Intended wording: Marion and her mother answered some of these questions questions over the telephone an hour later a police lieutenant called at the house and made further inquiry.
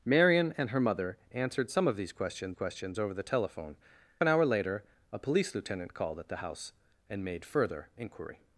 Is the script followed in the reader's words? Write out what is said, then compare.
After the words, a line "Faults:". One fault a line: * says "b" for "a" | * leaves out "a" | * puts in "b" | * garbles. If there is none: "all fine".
Marion and her mother answered some of these questions questions over the telephone an hour later a police lieutenant called at the house and made further inquiry.
Faults:
all fine